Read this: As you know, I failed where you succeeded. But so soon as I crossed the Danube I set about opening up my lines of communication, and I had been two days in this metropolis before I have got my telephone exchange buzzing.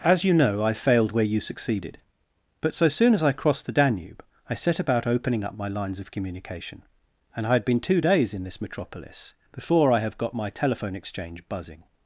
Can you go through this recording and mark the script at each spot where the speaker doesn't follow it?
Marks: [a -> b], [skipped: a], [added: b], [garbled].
As you know, I failed where you succeeded. But so soon as I crossed the Danube I set about opening up my lines of communication, and I had been two days in this metropolis before I have got my telephone exchange buzzing.